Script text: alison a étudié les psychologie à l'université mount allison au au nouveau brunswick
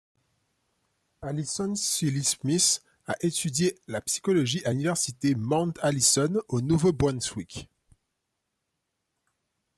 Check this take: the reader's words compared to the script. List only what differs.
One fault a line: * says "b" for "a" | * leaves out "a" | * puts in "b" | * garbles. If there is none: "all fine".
* puts in "sealy smith"
* says "la" for "les"
* leaves out "au"